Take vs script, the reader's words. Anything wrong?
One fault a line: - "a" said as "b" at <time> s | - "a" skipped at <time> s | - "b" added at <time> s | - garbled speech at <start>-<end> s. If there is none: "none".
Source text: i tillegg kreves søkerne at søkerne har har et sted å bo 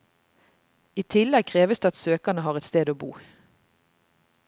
- "søkerne" said as "det" at 1.8 s
- "har" skipped at 2.6 s